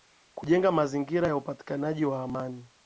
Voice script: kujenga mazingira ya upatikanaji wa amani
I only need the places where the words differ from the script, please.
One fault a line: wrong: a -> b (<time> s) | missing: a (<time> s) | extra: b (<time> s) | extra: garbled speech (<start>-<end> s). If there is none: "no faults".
no faults